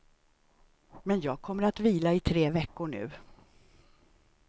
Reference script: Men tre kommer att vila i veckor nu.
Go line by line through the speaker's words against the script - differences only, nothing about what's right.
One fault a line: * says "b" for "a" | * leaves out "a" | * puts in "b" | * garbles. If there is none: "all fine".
* says "jag" for "tre"
* puts in "tre"